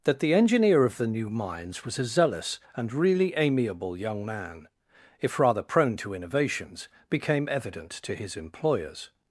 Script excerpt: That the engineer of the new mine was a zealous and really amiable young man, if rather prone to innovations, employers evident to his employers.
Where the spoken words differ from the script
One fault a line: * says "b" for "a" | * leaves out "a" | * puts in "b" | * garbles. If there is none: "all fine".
* says "mines" for "mine"
* says "became" for "employers"